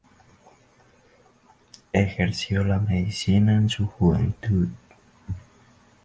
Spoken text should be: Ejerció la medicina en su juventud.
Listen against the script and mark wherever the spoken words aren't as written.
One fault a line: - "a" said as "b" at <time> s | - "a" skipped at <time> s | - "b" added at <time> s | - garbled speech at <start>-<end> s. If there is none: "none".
none